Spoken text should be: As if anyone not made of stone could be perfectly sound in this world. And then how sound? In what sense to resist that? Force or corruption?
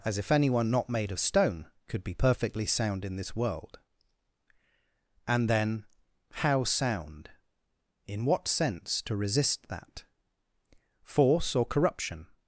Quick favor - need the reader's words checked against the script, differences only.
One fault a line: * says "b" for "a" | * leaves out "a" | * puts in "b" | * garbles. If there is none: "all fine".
all fine